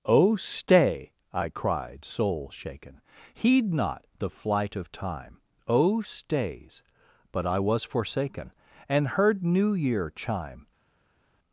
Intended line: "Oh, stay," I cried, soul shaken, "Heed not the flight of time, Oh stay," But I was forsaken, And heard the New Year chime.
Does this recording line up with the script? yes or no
no